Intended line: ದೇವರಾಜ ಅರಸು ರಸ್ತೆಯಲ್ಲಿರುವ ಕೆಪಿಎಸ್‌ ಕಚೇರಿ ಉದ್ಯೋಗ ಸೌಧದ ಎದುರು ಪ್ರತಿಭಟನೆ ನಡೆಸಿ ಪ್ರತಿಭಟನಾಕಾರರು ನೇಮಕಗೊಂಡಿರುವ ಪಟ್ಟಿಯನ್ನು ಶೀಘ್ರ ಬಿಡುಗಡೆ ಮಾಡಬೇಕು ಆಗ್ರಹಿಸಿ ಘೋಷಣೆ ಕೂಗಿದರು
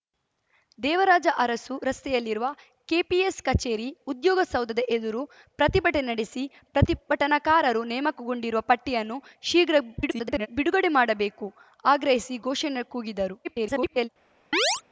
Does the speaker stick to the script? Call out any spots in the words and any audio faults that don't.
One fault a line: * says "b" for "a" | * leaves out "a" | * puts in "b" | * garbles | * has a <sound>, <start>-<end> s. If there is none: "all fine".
* garbles
* garbles
* has a chirp, 14.5-14.8 s